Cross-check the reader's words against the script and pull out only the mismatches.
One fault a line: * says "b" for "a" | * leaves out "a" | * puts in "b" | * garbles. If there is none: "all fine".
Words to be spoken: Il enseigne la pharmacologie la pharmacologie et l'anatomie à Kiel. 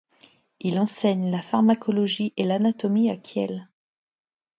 * leaves out "la pharmacologie"